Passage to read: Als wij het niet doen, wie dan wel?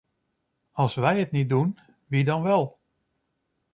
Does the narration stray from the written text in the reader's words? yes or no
no